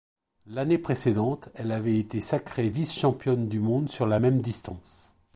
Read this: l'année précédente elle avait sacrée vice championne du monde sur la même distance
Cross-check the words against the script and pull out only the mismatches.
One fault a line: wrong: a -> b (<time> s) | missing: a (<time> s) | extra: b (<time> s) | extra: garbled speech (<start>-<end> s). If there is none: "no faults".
extra: été (2.0 s)